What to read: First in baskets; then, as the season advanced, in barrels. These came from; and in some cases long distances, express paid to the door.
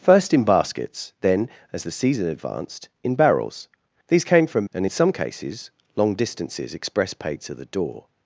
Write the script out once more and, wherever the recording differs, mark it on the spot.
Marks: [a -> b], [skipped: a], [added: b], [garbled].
First in baskets; then, as the season advanced, in barrels. These came from; and in some cases long distances, express paid to the door.